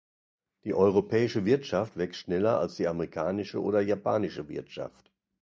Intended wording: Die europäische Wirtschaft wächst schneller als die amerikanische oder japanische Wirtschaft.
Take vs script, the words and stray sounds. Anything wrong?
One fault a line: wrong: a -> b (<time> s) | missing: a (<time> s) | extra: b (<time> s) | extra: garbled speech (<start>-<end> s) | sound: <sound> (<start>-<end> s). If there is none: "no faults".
no faults